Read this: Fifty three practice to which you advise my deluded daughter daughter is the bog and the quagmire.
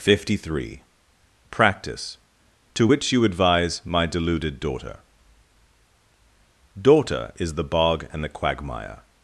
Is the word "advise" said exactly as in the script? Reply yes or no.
yes